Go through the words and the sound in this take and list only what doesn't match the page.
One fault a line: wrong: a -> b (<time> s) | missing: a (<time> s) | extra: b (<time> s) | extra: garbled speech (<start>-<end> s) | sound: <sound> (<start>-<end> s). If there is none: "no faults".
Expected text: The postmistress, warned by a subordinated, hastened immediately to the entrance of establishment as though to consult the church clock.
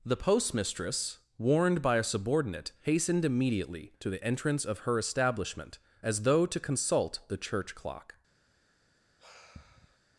wrong: subordinated -> subordinate (2.0 s)
extra: her (4.8 s)
sound: sigh (9.2-10.0 s)